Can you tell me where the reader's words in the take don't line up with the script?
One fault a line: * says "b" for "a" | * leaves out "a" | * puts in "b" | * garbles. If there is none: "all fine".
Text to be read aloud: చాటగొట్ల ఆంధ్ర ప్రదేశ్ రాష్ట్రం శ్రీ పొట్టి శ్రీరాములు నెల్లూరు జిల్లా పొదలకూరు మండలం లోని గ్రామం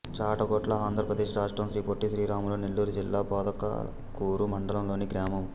all fine